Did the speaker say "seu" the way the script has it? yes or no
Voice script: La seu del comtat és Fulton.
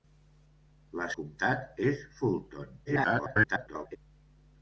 no